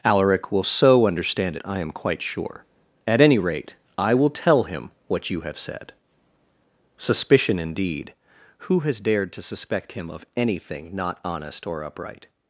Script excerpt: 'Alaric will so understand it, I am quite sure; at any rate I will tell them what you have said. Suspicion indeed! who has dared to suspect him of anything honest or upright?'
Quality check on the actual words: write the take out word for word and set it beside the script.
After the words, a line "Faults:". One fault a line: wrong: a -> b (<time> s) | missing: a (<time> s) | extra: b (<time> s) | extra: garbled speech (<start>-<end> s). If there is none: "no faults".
'Alaric will so understand it, I am quite sure; at any rate I will tell him what you have said. Suspicion indeed! who has dared to suspect him of anything not honest or upright?'
Faults:
wrong: them -> him (4.6 s)
extra: not (11.0 s)